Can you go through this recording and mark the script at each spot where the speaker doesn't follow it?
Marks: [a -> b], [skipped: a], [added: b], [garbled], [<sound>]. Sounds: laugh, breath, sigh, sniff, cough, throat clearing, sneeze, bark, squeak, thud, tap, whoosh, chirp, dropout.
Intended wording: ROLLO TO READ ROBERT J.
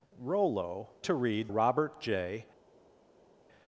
ROLLO TO READ ROBERT J.